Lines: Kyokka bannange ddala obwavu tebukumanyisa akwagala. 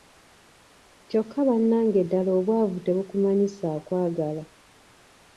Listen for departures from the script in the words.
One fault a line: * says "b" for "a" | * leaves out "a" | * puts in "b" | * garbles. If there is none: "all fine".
all fine